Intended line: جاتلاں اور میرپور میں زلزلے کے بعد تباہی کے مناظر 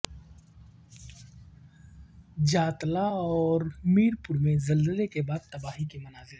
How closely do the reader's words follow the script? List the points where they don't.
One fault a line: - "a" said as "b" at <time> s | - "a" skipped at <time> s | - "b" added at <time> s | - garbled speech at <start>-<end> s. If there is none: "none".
none